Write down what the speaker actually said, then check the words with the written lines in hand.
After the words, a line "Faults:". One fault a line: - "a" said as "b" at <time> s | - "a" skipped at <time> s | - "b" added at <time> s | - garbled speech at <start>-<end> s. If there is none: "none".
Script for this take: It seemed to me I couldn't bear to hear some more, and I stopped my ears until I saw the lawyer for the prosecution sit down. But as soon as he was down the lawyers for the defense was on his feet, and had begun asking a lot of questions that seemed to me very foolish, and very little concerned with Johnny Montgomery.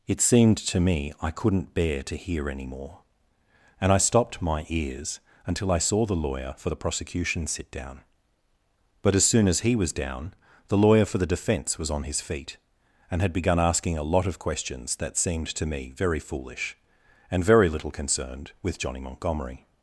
It seemed to me I couldn't bear to hear any more, and I stopped my ears until I saw the lawyer for the prosecution sit down. But as soon as he was down the lawyer for the defense was on his feet, and had begun asking a lot of questions that seemed to me very foolish, and very little concerned with Johnny Montgomery.
Faults:
- "some" said as "any" at 2.5 s
- "lawyers" said as "lawyer" at 10.8 s